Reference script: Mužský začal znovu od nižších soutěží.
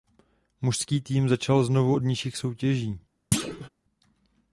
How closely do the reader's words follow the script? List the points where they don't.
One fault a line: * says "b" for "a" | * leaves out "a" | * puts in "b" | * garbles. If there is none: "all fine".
* puts in "tým"